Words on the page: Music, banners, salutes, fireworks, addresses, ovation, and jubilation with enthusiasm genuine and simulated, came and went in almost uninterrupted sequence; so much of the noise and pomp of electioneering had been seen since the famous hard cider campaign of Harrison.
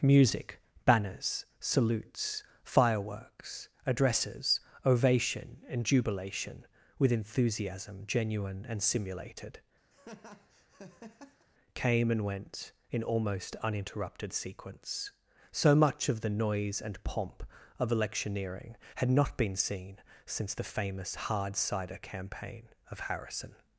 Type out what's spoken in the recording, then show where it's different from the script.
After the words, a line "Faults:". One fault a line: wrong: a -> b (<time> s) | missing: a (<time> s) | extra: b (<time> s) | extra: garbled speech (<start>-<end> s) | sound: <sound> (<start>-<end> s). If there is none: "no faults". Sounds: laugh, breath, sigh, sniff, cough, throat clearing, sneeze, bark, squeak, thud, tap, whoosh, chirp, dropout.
Music, banners, salutes, fireworks, addresses, ovation, and jubilation with enthusiasm genuine and simulated, came and went in almost uninterrupted sequence; so much of the noise and pomp of electioneering had not been seen since the famous hard cider campaign of Harrison.
Faults:
sound: laugh (9.9-11.5 s)
extra: not (19.1 s)